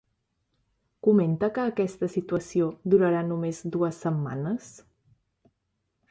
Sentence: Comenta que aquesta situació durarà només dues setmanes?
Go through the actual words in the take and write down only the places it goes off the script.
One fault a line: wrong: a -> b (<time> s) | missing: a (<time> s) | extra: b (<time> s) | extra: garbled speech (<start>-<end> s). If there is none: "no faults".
no faults